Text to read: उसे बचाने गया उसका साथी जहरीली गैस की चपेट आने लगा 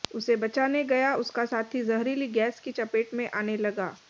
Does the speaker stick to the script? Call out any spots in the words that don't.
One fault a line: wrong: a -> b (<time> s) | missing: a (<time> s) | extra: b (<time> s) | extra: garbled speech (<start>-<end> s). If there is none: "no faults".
extra: में (3.1 s)